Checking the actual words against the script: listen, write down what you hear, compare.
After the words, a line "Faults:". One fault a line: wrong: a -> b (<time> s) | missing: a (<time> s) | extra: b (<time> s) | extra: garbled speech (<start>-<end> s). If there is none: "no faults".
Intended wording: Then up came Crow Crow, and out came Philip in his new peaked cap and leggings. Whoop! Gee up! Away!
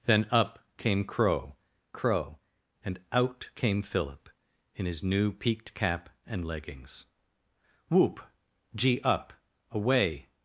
Then up came Crow Crow, and out came Philip in his new peaked cap and leggings. Whoop! Gee up! Away!
Faults:
no faults